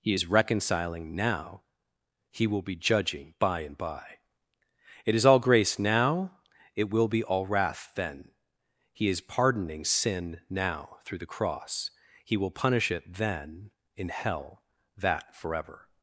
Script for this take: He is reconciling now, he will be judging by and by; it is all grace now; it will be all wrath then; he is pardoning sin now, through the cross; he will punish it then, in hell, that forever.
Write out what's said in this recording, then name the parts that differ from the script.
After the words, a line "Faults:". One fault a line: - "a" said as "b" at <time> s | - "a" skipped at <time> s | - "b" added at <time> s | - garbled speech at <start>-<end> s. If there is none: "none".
He is reconciling now, he will be judging by and by; it is all grace now; it will be all wrath then; he is pardoning sin now, through the cross; he will punish it then, in hell, that forever.
Faults:
none